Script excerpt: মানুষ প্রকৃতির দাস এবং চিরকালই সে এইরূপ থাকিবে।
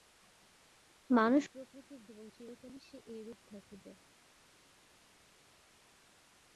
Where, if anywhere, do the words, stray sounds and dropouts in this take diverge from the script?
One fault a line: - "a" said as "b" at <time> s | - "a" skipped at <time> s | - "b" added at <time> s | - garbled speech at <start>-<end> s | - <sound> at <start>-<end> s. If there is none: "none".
- "দাস" skipped at 2.0 s